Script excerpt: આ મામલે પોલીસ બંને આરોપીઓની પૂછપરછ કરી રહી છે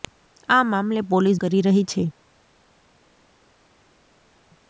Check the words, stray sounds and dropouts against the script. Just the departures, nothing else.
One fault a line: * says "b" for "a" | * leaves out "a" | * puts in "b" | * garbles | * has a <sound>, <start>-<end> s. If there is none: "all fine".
* leaves out "બંને આરોપીઓની પૂછપરછ"